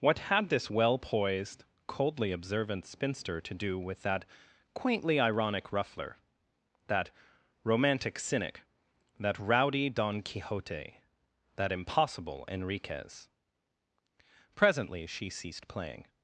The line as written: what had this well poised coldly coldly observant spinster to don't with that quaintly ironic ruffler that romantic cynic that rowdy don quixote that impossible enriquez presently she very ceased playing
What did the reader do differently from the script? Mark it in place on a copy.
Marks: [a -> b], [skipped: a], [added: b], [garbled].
what had this well poised coldly [skipped: coldly] observant spinster to [don't -> do] with that quaintly ironic ruffler that romantic cynic that rowdy don quixote that impossible enriquez presently she [skipped: very] ceased playing